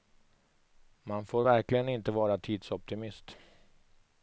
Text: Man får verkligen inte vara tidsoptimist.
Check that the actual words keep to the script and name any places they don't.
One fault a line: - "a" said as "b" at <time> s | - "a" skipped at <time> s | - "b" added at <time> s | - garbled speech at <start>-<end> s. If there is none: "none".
none